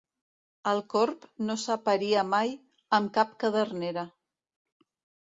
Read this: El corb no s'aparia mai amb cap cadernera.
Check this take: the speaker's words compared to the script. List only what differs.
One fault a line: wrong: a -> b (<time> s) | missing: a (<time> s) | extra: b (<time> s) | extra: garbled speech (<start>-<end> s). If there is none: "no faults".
no faults